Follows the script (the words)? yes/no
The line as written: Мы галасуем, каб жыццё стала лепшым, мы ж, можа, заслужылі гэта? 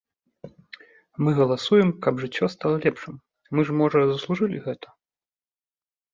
yes